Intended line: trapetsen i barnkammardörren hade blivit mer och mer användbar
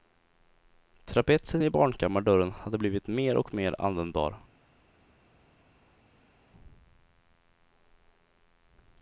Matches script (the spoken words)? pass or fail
pass